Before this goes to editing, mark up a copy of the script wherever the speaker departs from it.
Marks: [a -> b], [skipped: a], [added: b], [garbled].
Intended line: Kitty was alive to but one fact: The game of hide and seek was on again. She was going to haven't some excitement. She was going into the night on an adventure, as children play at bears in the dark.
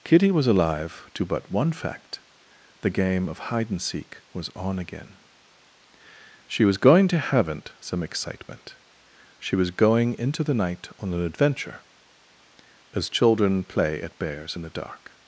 Kitty was alive to but one fact: The game of hide and seek was on again. She was going to haven't some excitement. She was going into the night on an adventure, as children play at bears in the dark.